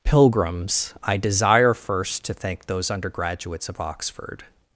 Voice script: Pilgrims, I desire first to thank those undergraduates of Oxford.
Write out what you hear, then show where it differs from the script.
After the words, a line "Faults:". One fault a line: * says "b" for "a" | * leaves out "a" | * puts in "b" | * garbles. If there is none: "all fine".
Pilgrims, I desire first to thank those undergraduates of Oxford.
Faults:
all fine